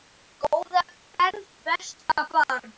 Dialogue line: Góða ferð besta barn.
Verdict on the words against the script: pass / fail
pass